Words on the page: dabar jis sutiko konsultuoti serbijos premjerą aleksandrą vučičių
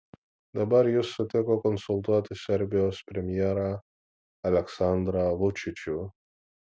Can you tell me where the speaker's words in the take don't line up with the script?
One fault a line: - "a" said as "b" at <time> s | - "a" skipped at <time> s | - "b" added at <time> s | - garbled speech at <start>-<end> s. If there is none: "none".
none